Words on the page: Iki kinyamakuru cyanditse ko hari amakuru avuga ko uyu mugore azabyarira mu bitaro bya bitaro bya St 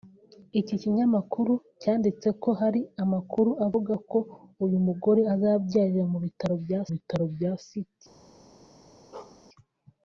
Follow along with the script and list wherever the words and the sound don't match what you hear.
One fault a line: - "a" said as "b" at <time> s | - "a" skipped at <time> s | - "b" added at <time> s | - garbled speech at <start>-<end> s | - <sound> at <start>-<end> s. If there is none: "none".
- bark at 9.1-9.4 s